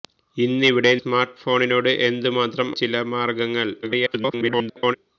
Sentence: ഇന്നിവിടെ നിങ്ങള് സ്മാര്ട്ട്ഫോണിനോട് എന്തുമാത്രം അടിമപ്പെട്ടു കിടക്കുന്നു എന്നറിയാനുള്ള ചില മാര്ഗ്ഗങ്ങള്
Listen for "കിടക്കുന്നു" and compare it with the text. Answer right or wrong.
wrong